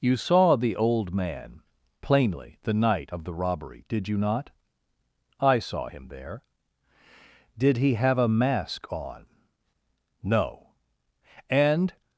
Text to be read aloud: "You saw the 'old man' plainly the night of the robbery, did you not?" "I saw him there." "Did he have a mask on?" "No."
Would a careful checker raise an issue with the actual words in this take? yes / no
yes